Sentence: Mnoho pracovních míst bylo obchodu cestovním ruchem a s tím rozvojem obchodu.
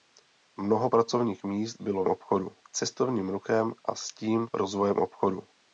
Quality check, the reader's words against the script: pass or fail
pass